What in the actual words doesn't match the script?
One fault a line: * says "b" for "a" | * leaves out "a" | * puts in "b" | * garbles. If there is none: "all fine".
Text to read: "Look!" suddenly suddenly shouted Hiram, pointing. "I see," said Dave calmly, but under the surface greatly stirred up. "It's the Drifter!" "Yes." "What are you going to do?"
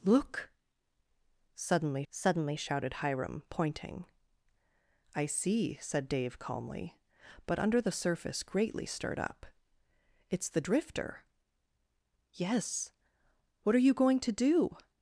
all fine